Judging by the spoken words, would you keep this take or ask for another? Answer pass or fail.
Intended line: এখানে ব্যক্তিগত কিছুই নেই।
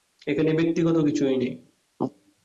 pass